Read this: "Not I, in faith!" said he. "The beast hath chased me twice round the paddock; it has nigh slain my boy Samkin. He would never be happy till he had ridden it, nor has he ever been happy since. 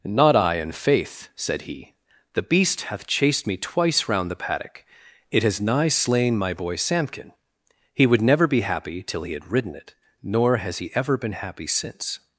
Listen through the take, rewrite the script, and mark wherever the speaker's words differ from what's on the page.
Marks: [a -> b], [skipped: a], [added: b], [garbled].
"Not I, in faith!" said he. "The beast hath chased me twice round the paddock; it has nigh slain my boy Samkin. He would never be happy till he had ridden it, nor has he ever been happy since.